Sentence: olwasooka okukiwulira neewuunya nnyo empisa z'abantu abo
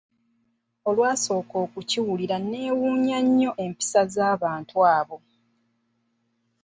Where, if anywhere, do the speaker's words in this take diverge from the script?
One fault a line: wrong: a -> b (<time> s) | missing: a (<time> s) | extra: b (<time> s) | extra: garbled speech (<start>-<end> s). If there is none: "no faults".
no faults